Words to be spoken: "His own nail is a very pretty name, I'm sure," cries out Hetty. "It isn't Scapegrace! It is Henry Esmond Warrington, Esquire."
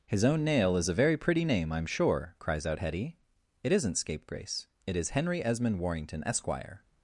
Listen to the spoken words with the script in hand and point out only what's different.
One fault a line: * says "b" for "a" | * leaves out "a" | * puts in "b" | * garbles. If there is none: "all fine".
all fine